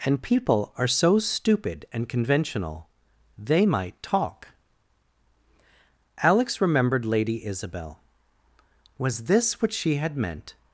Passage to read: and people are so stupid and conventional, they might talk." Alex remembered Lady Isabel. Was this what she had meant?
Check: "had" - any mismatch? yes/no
no